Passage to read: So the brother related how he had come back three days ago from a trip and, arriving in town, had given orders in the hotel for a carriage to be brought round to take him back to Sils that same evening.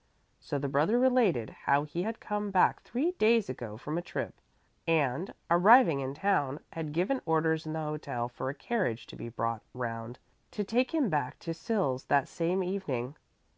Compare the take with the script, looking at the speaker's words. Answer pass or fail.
pass